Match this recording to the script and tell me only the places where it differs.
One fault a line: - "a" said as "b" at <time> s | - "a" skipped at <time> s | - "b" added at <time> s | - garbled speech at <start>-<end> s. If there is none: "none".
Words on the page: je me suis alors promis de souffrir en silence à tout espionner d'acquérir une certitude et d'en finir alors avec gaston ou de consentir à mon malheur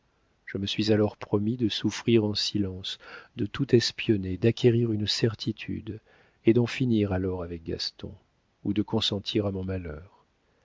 - "à" said as "de" at 3.4 s